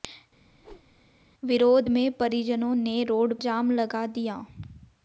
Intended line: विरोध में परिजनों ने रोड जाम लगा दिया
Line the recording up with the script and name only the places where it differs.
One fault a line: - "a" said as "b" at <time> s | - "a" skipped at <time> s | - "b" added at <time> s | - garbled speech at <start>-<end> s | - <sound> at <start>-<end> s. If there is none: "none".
- whoosh at 0.5-1.1 s